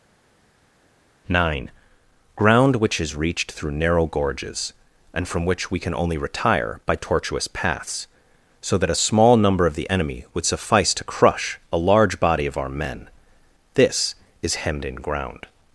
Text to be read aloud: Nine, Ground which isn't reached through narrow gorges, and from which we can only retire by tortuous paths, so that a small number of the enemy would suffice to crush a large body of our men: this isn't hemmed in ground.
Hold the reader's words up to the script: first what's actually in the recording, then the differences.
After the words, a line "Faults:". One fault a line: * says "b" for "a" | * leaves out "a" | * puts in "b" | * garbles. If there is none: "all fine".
Nine, Ground which is reached through narrow gorges, and from which we can only retire by tortuous paths, so that a small number of the enemy would suffice to crush a large body of our men: this is hemmed in ground.
Faults:
* says "is" for "isn't"
* says "is" for "isn't"